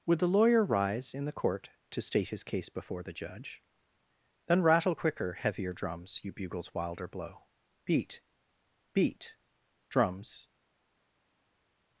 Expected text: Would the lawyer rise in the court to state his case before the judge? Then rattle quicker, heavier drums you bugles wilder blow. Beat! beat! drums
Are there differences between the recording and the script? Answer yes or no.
no